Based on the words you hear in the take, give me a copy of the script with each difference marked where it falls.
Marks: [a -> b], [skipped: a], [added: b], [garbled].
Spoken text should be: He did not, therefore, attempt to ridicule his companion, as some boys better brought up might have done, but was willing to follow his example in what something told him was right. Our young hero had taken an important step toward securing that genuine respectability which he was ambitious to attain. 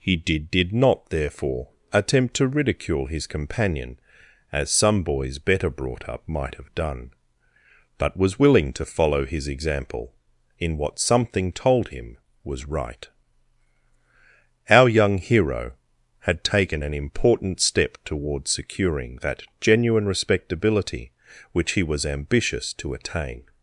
He did [added: did] not, therefore, attempt to ridicule his companion, as some boys better brought up might have done, but was willing to follow his example in what something told him was right. Our young hero had taken an important step toward securing that genuine respectability which he was ambitious to attain.